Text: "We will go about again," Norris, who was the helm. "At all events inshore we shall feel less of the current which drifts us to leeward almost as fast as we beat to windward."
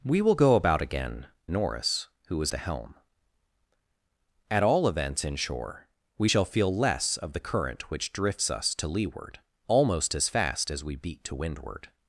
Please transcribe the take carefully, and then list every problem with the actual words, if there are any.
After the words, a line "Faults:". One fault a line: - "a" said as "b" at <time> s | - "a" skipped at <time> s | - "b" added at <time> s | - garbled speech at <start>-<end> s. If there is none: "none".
"We will go about again," Norris, who was the helm. "At all events inshore we shall feel less of the current which drifts us to leeward almost as fast as we beat to windward."
Faults:
none